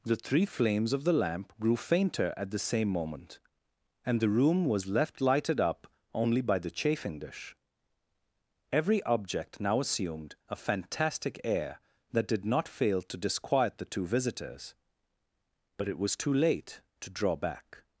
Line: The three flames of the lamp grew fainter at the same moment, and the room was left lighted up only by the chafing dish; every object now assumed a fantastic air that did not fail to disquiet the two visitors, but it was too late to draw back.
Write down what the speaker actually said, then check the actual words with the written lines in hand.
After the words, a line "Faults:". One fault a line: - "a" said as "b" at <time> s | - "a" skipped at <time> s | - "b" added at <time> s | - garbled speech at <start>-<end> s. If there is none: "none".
The three flames of the lamp grew fainter at the same moment, and the room was left lighted up only by the chafing dish; every object now assumed a fantastic air that did not fail to disquiet the two visitors, but it was too late to draw back.
Faults:
none